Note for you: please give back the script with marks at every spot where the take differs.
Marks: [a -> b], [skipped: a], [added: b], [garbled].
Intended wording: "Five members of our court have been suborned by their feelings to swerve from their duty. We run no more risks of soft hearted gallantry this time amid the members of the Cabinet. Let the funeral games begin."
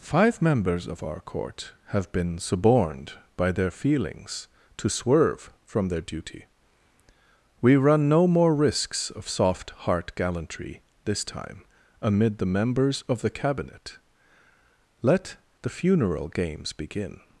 "Five members of our court have been suborned by their feelings to swerve from their duty. We run no more risks of soft [hearted -> heart] gallantry this time amid the members of the Cabinet. Let the funeral games begin."